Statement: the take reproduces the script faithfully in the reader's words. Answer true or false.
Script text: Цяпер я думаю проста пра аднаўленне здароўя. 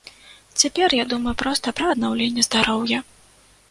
true